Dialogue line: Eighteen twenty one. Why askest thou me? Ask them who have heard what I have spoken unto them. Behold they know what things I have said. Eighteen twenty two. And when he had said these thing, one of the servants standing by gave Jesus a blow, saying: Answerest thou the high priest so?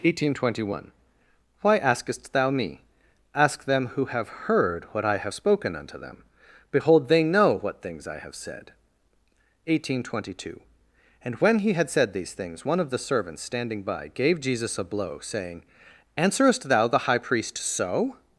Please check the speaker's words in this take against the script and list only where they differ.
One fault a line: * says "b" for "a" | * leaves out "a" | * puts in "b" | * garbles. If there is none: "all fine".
* says "things" for "thing"